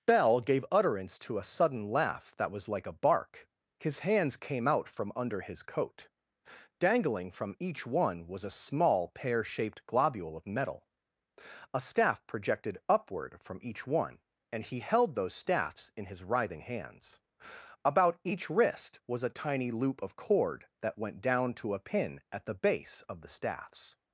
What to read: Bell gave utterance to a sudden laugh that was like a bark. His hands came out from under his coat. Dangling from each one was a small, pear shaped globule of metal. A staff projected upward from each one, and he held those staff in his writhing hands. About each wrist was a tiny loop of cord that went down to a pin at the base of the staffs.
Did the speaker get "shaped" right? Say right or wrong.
right